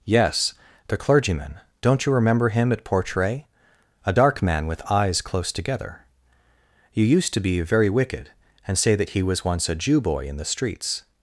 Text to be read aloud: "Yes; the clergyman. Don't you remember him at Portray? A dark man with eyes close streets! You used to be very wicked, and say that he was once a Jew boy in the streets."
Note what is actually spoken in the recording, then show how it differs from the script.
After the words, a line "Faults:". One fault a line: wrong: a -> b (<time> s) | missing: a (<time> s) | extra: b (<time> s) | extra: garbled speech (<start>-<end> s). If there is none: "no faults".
"Yes; the clergyman. Don't you remember him at Portray? A dark man with eyes close together! You used to be very wicked, and say that he was once a Jew boy in the streets."
Faults:
wrong: streets -> together (5.5 s)